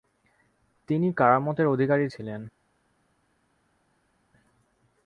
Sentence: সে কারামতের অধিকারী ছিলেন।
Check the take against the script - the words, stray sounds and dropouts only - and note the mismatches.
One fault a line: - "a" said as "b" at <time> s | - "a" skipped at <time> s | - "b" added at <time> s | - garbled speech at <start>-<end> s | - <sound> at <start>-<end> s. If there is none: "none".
- "সে" said as "তিনি" at 0.9 s